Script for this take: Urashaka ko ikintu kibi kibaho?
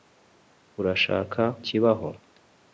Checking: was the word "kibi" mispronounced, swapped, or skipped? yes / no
yes